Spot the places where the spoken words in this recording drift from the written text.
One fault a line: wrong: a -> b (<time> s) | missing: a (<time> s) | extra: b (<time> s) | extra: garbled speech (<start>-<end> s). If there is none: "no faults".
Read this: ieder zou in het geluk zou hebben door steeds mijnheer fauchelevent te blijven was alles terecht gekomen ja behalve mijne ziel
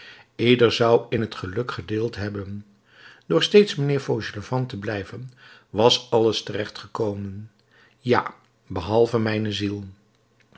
wrong: zou -> gedeeld (1.7 s)